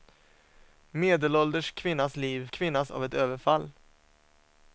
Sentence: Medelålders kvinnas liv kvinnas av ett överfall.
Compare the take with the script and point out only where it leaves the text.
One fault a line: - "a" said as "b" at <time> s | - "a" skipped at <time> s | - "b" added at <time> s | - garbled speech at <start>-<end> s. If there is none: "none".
none